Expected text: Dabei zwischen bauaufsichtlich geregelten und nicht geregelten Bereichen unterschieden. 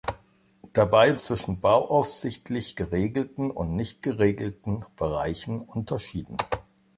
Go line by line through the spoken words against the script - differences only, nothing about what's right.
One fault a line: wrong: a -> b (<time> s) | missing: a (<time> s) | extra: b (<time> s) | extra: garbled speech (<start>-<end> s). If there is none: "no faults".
no faults